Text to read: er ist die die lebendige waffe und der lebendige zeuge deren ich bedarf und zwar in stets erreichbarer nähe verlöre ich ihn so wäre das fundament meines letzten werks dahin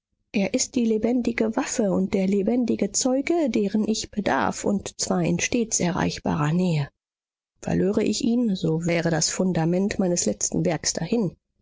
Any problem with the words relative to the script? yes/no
yes